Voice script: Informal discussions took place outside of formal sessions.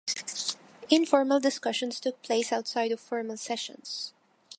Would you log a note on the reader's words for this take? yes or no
no